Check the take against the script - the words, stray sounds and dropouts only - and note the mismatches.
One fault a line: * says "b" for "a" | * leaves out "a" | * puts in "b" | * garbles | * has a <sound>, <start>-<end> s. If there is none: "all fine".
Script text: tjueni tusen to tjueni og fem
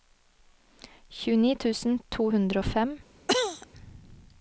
* says "hundre" for "tjueni"
* has a cough, 3.3-3.7 s